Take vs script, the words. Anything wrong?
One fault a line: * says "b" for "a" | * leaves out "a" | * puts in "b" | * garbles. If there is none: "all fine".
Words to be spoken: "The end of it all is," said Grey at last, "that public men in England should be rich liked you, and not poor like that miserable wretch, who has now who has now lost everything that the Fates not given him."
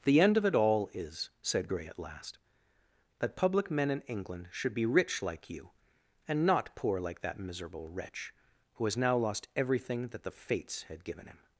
* says "like" for "liked"
* leaves out "who has now"
* says "had" for "not"